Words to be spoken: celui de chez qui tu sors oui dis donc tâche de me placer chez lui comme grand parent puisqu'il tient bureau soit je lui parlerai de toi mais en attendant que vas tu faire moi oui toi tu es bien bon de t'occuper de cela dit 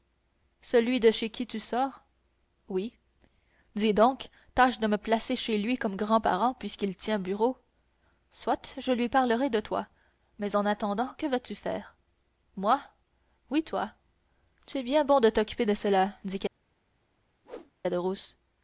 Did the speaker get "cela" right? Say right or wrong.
right